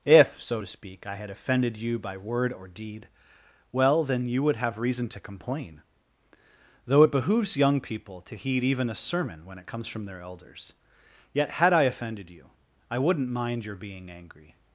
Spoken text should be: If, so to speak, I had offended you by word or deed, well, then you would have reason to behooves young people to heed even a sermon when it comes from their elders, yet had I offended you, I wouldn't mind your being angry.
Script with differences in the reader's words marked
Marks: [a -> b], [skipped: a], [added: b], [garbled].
If, so to speak, I had offended you by word or deed, well, then you would have reason to [added: complain Though it] behooves young people to heed even a sermon when it comes from their elders, yet had I offended you, I wouldn't mind your being angry.